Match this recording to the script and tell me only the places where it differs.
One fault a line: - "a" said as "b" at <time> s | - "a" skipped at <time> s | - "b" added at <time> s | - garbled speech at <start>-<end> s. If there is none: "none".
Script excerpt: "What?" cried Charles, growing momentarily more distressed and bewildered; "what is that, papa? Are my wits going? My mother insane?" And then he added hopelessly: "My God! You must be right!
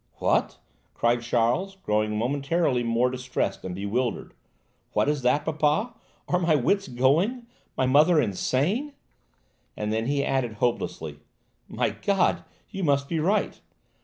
none